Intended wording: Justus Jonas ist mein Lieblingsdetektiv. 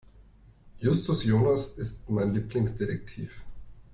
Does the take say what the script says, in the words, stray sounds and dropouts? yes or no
yes